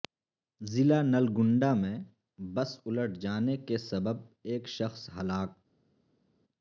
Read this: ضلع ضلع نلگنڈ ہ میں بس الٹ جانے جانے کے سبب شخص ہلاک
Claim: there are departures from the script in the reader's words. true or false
true